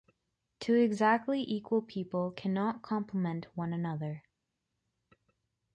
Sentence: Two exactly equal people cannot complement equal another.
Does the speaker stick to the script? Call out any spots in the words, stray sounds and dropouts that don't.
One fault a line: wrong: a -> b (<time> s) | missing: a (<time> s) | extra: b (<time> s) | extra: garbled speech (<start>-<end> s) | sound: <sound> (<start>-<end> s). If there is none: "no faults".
wrong: equal -> one (3.5 s)